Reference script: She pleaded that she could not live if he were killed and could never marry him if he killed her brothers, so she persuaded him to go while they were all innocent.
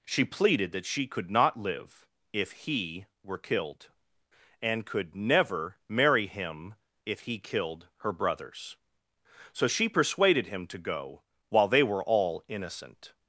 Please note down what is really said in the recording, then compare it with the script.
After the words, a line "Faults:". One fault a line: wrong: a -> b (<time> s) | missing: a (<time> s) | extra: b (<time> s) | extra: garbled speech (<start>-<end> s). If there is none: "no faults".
She pleaded that she could not live if he were killed and could never marry him if he killed her brothers, so she persuaded him to go while they were all innocent.
Faults:
no faults